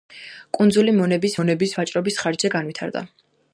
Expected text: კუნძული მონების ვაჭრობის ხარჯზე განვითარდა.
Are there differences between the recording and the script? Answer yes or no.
yes